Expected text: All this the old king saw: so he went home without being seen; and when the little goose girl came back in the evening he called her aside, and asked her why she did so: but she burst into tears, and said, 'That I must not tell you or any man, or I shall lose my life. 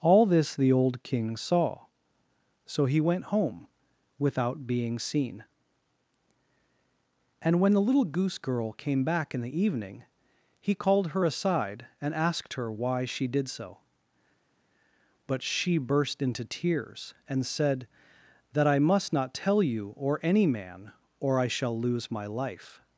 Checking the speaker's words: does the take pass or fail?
pass